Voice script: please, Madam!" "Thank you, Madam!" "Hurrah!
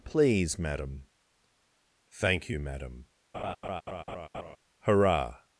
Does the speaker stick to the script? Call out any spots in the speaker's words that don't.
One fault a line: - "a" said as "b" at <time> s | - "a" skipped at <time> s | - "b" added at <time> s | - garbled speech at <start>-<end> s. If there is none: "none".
none